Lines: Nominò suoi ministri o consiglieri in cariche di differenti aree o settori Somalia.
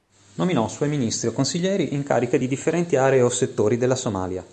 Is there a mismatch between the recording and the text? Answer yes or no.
yes